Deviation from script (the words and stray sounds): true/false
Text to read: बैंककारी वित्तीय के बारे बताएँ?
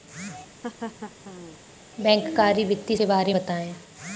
true